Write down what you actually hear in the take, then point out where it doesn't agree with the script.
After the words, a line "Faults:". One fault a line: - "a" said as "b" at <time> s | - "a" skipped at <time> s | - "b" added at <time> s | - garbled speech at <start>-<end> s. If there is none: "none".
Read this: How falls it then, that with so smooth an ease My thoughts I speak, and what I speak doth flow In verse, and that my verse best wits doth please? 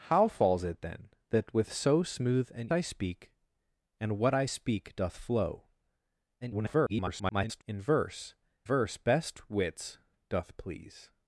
How falls it then, that with so smooth an I speak, and what I speak doth flow [garbled] In verse, verse best wits doth please?
Faults:
- "ease My thoughts" skipped at 2.7 s
- garbled speech at 6.4-7.6 s
- "and that my" skipped at 8.3 s